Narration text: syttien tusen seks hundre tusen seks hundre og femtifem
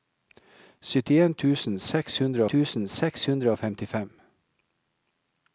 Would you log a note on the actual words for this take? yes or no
no